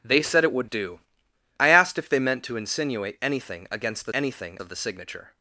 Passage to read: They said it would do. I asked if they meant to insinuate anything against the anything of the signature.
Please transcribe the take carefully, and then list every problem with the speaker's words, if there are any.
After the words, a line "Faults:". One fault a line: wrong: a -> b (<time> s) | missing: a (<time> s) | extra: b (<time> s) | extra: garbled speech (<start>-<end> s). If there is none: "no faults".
They said it would do. I asked if they meant to insinuate anything against the anything of the signature.
Faults:
no faults